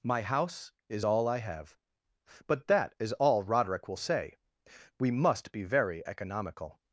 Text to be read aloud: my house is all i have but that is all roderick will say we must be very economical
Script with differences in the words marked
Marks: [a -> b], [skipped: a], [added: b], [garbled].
my house is all i have but that is all roderick will say we must be very economical